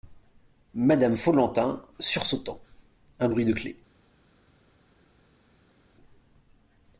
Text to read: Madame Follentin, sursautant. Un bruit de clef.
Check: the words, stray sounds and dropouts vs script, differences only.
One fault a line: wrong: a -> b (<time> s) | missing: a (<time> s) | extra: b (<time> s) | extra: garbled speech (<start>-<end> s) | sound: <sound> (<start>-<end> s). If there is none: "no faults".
no faults